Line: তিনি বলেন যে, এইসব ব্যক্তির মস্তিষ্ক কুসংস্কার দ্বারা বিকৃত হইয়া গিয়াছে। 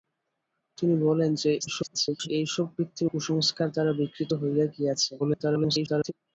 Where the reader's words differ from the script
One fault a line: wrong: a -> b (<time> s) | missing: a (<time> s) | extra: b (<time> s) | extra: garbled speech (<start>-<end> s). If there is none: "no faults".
extra: garbled speech (1.6-2.3 s)
missing: মস্তিষ্ক (3.1 s)
extra: garbled speech (5.2-6.1 s)